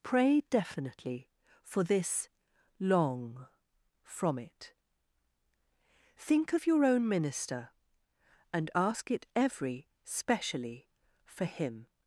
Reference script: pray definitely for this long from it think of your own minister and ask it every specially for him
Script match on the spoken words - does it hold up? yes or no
yes